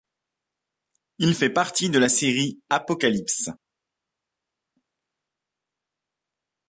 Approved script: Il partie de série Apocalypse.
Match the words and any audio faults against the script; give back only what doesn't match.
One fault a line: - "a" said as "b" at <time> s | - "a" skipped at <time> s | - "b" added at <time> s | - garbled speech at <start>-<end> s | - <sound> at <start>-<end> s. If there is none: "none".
- "fait" added at 1.3 s
- "la" added at 2.0 s